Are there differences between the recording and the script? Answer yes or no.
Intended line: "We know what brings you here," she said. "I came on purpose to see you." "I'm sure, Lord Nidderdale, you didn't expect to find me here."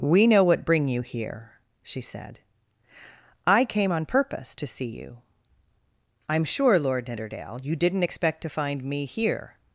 yes